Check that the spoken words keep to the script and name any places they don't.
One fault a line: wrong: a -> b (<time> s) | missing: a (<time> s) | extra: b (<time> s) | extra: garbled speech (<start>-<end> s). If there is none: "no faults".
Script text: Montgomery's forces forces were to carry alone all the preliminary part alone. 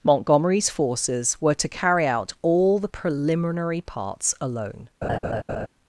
missing: forces (1.4 s)
wrong: alone -> out (2.1 s)
wrong: part -> parts (3.8 s)